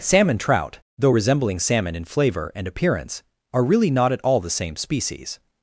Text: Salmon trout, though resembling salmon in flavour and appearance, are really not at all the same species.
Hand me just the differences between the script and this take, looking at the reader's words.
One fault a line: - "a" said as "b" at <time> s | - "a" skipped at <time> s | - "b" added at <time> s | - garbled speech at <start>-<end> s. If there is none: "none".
none